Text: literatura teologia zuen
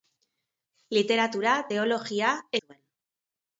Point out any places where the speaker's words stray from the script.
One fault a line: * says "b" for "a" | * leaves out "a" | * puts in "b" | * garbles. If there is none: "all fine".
all fine